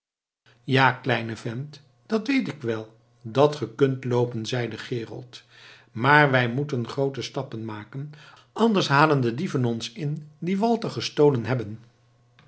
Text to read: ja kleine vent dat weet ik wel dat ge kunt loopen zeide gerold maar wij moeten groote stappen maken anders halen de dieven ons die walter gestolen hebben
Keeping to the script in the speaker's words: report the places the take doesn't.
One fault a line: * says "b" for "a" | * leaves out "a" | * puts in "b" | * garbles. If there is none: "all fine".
* puts in "in"